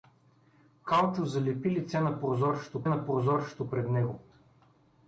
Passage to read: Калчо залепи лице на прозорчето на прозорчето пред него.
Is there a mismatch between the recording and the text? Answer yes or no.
no